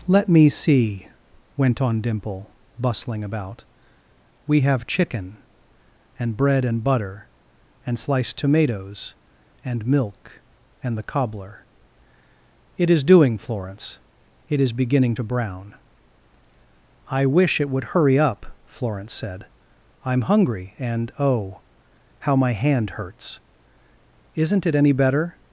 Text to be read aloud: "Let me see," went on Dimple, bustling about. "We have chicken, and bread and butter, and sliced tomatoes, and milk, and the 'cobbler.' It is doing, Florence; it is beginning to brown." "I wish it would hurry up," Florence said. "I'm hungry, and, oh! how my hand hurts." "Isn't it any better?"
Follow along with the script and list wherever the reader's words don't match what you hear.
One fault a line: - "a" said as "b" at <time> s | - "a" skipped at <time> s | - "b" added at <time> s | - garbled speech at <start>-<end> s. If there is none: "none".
none